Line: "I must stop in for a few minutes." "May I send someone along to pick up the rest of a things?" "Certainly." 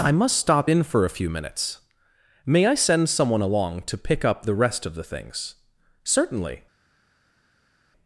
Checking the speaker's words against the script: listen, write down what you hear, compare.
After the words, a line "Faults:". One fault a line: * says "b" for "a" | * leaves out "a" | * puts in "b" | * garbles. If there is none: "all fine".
"I must stop in for a few minutes." "May I send someone along to pick up the rest of the things?" "Certainly."
Faults:
* says "the" for "a"